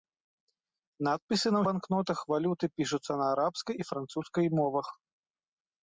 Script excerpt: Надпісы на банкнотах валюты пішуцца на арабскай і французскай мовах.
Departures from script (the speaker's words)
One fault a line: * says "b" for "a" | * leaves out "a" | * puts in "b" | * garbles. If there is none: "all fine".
all fine